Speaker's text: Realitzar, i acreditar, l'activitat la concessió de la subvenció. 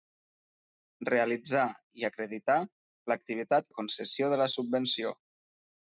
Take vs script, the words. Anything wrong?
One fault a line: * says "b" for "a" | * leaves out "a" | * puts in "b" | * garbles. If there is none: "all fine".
all fine